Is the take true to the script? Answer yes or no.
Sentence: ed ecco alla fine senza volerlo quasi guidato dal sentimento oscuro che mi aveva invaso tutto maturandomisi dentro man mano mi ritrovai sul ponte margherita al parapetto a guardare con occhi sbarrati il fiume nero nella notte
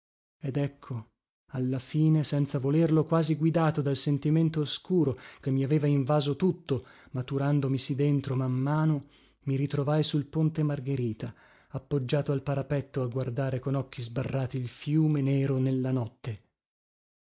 no